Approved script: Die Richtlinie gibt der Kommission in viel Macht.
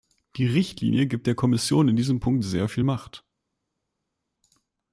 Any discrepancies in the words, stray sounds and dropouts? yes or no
yes